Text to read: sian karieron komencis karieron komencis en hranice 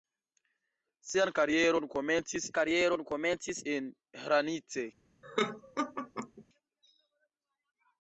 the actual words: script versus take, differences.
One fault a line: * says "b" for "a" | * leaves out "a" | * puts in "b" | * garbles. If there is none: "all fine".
all fine